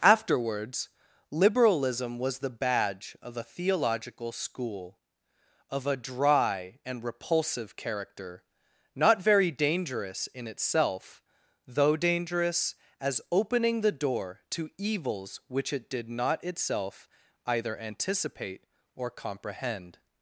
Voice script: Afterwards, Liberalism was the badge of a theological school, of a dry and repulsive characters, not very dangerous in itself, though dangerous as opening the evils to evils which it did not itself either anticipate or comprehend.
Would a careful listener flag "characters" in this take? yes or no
yes